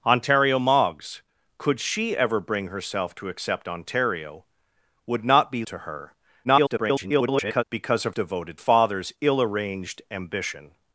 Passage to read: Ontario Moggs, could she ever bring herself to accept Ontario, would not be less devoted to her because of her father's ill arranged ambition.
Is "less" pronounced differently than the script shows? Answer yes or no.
yes